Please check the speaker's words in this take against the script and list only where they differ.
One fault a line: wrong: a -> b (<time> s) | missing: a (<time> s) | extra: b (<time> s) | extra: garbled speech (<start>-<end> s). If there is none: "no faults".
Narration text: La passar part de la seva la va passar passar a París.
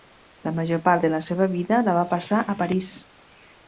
wrong: passar -> major (0.6 s)
extra: vida (1.6 s)
missing: passar (2.4 s)